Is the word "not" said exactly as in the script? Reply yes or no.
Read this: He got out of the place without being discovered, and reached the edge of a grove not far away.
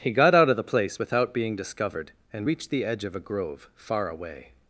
no